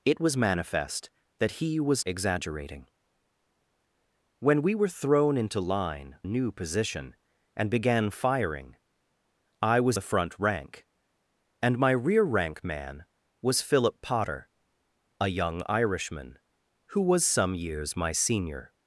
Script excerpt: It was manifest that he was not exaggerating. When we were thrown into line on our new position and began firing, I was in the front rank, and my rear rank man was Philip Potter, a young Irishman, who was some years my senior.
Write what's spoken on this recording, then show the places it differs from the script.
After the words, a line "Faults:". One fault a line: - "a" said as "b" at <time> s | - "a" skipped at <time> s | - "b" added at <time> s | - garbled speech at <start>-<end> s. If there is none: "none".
It was manifest that he was exaggerating. When we were thrown into line new position and began firing, I was the front rank, and my rear rank man was Philip Potter, a young Irishman, who was some years my senior.
Faults:
- "not" skipped at 2.0 s
- "on our" skipped at 6.2 s
- "in" skipped at 10.0 s